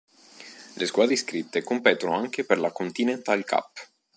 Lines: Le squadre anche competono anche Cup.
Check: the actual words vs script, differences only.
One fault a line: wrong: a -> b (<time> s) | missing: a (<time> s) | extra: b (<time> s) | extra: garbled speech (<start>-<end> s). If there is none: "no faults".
wrong: anche -> iscritte (1.1 s)
extra: per la Continental (2.4 s)